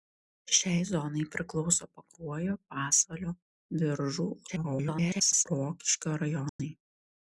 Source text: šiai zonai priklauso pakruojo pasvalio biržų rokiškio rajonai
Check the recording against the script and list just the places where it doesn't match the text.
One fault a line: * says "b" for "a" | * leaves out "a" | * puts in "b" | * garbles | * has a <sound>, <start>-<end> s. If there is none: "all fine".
* garbles
* has a dropout, 6.5-6.6 s